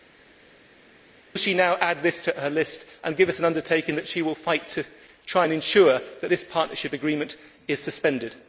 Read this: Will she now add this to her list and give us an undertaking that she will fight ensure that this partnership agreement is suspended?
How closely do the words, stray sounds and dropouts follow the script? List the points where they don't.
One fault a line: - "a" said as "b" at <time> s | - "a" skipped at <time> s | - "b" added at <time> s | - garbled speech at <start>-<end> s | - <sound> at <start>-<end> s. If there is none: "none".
- "to try and" added at 4.7 s